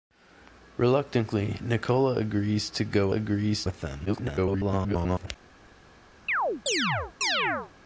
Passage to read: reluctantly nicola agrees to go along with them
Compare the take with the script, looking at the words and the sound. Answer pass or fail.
fail